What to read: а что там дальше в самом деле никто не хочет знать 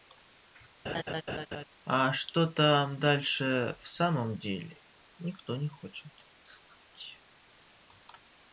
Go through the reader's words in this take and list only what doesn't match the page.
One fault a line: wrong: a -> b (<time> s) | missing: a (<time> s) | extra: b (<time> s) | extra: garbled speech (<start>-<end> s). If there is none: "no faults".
no faults